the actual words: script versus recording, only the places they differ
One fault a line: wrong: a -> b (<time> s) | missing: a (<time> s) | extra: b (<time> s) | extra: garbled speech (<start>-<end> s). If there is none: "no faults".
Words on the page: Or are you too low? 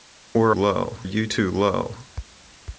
wrong: are -> low (0.5 s)